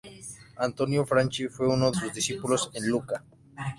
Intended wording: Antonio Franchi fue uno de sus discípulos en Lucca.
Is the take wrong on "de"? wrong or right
wrong